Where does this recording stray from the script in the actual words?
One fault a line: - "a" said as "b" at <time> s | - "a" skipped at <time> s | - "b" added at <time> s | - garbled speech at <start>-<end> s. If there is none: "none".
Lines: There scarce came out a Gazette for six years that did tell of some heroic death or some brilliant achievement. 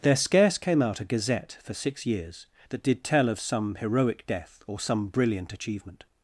none